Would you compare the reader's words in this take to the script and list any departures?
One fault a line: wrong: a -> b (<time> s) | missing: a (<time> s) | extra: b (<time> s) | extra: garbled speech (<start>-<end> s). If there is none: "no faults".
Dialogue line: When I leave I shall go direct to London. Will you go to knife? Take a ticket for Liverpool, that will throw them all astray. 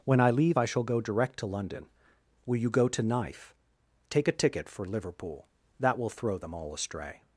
no faults